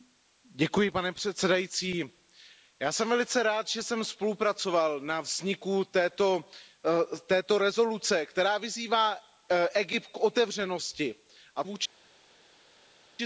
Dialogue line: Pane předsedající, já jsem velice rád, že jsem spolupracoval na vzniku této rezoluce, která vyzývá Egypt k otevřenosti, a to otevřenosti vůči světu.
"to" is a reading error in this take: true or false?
true